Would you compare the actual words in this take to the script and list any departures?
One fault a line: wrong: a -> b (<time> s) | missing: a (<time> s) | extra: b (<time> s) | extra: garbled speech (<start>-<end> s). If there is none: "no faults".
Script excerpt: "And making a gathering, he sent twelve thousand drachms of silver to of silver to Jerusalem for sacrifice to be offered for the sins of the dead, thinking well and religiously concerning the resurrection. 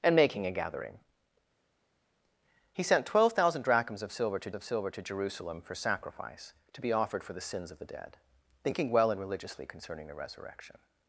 no faults